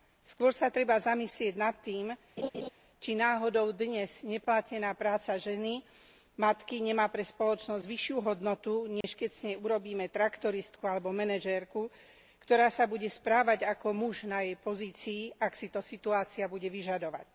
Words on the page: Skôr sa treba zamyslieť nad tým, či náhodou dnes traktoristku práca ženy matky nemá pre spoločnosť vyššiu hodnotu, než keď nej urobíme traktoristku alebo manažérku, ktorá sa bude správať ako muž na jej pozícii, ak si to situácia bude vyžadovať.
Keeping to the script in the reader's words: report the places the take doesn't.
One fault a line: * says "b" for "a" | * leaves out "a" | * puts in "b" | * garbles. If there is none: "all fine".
* says "neplatená" for "traktoristku"
* puts in "z"